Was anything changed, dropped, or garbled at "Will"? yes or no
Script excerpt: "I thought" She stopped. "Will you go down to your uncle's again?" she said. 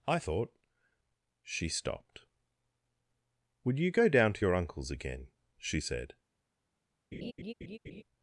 yes